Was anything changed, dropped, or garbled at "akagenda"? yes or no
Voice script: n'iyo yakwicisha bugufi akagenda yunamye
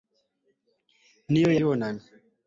yes